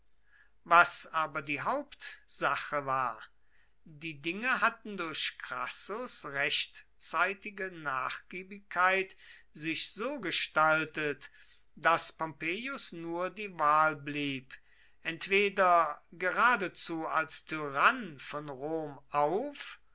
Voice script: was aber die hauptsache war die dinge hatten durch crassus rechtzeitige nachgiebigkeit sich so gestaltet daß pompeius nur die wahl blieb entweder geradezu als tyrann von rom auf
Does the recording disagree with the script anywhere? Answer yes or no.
no